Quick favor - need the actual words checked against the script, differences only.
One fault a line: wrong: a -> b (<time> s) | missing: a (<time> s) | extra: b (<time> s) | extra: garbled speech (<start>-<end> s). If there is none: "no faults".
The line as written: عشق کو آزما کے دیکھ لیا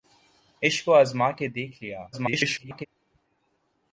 extra: garbled speech (2.1-2.9 s)